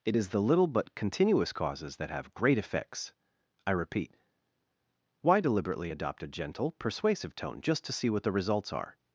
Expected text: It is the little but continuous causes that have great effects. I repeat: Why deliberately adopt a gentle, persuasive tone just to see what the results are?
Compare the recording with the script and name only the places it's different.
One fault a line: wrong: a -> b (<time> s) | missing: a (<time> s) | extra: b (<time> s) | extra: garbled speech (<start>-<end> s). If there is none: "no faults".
no faults